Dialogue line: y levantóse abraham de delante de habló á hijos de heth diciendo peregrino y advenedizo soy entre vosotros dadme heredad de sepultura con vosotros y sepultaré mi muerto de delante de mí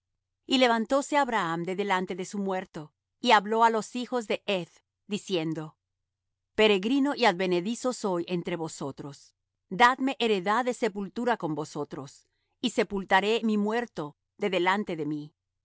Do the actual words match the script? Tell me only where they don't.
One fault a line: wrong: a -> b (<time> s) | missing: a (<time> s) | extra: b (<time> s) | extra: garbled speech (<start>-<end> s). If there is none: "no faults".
extra: su muerto y (2.2 s)
extra: los (3.7 s)